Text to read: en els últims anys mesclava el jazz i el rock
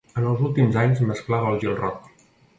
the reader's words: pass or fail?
fail